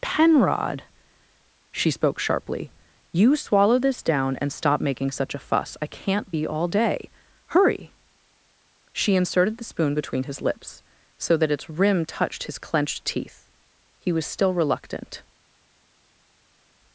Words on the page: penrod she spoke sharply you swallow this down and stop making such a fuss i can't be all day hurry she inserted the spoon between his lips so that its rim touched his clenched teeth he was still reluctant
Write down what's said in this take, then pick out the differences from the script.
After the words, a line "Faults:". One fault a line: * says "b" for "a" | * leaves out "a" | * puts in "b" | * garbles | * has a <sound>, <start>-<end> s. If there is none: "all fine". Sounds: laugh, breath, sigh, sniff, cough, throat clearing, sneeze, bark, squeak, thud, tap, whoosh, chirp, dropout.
penrod she spoke sharply you swallow this down and stop making such a fuss i can't be all day hurry she inserted the spoon between his lips so that its rim touched his clenched teeth he was still reluctant
Faults:
all fine